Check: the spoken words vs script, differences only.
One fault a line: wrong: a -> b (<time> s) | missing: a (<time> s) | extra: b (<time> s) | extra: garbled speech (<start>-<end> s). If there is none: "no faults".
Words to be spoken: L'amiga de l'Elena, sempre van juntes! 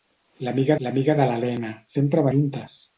extra: l'amiga (0.9 s)
missing: van (2.3 s)